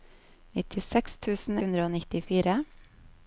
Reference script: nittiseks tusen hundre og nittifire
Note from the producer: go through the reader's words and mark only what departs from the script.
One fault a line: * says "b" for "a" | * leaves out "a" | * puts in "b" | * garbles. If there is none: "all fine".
all fine